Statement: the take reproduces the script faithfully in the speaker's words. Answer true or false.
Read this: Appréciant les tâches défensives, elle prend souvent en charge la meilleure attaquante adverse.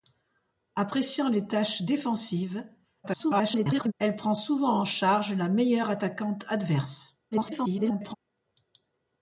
false